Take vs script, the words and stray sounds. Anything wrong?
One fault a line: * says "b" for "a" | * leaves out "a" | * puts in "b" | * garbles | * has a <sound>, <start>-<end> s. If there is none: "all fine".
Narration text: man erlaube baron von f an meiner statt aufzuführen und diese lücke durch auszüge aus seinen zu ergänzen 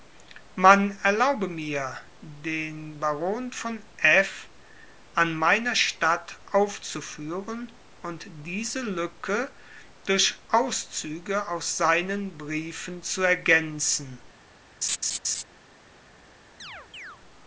* puts in "mir den"
* puts in "briefen"
* has a laugh, 14.8-15.4 s
* has a chirp, 16.6-17.2 s